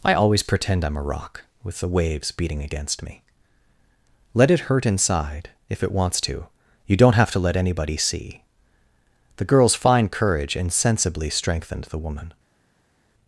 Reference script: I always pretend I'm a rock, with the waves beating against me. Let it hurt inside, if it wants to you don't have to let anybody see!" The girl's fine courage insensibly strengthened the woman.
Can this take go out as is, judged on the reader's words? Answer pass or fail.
pass